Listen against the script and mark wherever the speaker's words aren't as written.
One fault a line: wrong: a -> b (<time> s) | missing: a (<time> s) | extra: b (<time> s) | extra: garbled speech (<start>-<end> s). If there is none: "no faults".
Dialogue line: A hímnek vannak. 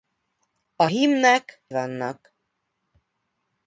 no faults